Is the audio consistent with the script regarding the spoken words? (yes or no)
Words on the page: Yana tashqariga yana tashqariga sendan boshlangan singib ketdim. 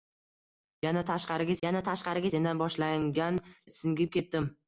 yes